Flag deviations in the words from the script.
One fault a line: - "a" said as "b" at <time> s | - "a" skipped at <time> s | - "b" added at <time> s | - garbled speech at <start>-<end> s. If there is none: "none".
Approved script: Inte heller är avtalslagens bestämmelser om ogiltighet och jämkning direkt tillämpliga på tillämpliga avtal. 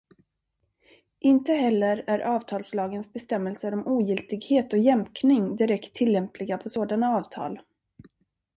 - "tillämpliga" said as "sådana" at 6.7 s